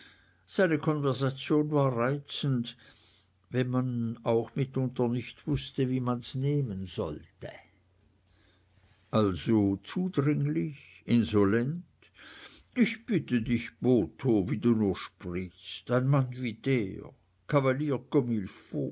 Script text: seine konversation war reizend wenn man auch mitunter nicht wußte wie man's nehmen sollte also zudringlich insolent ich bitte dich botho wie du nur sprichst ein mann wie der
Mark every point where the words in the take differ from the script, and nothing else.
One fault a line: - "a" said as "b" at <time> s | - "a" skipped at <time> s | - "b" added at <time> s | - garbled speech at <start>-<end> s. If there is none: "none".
none